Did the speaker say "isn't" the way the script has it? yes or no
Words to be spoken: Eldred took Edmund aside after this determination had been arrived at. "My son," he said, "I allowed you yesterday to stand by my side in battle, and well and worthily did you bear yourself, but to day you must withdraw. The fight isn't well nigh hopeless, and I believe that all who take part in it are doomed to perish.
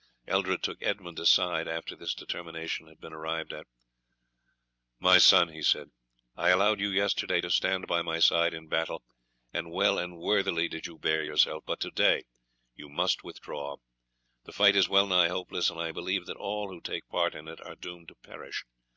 no